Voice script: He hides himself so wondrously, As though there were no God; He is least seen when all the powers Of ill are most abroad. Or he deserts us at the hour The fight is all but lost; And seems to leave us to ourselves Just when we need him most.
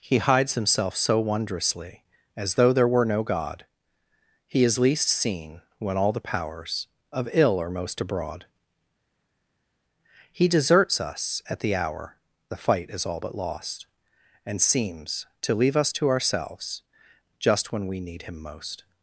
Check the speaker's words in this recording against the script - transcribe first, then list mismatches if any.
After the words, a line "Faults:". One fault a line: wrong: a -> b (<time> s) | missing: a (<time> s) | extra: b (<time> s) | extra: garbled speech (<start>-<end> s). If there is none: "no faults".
He hides himself so wondrously, As though there were no God; He is least seen when all the powers Of ill are most abroad. he deserts us at the hour The fight is all but lost; And seems to leave us to ourselves Just when we need him most.
Faults:
missing: Or (8.5 s)